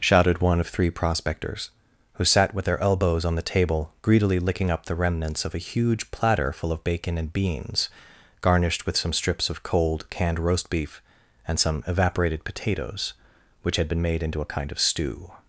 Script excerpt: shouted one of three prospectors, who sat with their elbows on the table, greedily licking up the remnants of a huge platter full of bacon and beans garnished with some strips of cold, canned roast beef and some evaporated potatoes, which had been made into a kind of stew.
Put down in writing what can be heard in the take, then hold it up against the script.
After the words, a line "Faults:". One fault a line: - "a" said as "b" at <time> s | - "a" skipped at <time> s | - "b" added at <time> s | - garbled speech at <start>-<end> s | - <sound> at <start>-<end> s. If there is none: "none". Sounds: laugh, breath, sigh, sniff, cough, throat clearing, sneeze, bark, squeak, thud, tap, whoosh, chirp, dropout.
shouted one of three prospectors, who sat with their elbows on the table, greedily licking up the remnants of a huge platter full of bacon and beans garnished with some strips of cold, canned roast beef and some evaporated potatoes, which had been made into a kind of stew.
Faults:
none